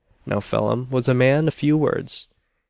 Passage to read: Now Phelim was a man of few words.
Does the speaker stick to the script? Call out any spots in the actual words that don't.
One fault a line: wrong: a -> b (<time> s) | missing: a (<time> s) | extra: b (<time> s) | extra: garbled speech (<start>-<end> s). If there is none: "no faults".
no faults